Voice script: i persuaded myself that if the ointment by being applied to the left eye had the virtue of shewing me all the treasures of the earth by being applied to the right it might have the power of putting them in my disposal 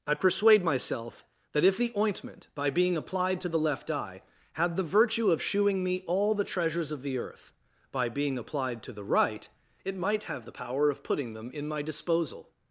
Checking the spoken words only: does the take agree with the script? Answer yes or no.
no